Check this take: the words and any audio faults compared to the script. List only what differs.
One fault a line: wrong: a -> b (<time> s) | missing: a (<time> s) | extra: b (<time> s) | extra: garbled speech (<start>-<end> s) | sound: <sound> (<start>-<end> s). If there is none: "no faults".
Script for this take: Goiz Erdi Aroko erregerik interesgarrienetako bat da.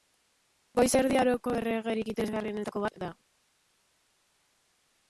no faults